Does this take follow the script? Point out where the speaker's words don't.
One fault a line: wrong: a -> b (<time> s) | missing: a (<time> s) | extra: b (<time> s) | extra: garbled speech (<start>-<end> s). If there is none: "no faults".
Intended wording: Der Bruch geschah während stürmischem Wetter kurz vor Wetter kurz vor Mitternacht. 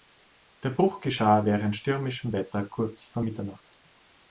missing: Wetter kurz vor (3.2 s)